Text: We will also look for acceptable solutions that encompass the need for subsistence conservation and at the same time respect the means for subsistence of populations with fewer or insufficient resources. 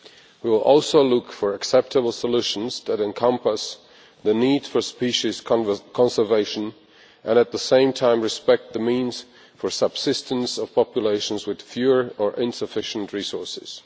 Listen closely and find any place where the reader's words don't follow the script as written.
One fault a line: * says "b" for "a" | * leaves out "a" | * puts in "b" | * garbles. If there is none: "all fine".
* says "species" for "subsistence"